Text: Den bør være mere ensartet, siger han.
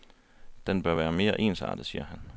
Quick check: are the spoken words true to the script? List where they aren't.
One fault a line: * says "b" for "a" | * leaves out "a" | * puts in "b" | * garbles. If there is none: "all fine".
all fine